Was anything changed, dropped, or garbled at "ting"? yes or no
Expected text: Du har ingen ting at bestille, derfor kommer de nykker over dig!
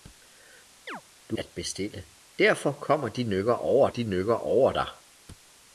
yes